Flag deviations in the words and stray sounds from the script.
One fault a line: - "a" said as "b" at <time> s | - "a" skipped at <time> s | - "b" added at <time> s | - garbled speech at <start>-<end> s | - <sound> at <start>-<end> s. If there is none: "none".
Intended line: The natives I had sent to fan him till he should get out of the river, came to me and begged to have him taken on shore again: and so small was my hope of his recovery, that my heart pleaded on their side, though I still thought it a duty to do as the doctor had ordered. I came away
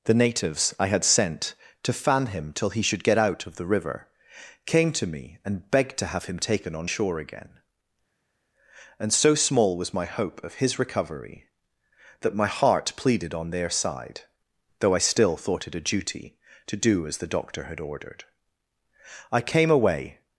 none